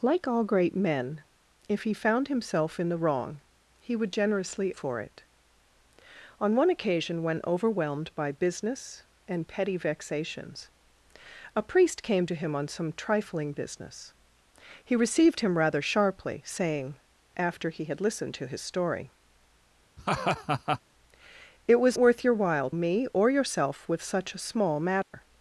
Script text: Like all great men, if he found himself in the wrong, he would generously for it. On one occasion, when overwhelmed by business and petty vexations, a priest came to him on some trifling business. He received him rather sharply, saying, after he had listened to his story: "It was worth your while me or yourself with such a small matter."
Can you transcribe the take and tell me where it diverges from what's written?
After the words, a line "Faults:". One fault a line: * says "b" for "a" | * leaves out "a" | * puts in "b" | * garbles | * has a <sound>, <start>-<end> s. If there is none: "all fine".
Like all great men, if he found himself in the wrong, he would generously for it. On one occasion, when overwhelmed by business and petty vexations, a priest came to him on some trifling business. He received him rather sharply, saying, after he had listened to his story: "It was worth your while me or yourself with such a small matter."
Faults:
* has a laugh, 20.0-20.8 s
* has a dropout, 25.0-25.1 s